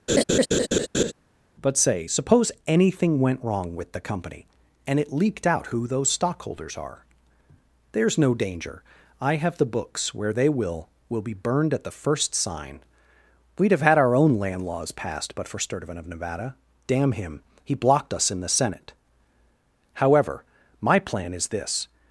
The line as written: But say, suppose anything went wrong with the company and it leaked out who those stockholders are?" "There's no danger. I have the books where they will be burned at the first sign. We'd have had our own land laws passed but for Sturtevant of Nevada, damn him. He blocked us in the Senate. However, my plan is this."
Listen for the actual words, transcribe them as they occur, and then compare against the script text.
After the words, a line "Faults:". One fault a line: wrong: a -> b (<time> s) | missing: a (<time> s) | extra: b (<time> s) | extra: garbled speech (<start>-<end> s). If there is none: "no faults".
But say, suppose anything went wrong with the company and it leaked out who those stockholders are?" "There's no danger. I have the books where they will will be burned at the first sign. We'd have had our own land laws passed but for Sturtevant of Nevada, damn him. He blocked us in the Senate. However, my plan is this."
Faults:
extra: will (11.1 s)